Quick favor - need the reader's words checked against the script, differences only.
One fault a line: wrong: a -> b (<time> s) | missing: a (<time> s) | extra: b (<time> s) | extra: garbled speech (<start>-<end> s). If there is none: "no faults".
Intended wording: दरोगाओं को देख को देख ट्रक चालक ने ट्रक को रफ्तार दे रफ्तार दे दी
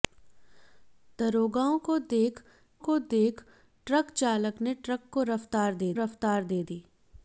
no faults